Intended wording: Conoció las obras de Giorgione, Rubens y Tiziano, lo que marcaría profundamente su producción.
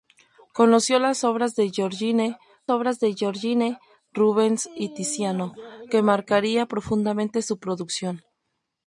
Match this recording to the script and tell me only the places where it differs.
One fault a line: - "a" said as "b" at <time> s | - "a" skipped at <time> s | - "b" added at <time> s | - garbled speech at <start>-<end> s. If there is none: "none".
- "obras de Giorgione" added at 2.7 s
- "lo" skipped at 5.5 s